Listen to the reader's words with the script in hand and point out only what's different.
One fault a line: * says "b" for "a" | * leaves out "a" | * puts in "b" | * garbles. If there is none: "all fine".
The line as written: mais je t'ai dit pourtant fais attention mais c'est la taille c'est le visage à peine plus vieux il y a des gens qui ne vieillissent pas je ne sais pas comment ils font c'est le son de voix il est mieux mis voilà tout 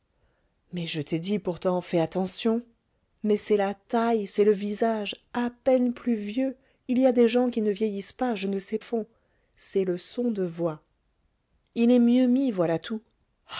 * leaves out "pas comment ils"